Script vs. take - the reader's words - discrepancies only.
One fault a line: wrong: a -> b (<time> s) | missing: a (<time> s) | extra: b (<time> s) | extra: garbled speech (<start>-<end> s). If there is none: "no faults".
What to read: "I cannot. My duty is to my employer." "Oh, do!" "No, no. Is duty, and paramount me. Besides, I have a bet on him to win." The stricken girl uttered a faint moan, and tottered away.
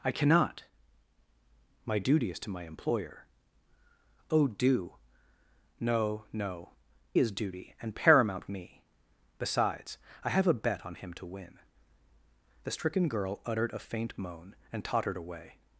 no faults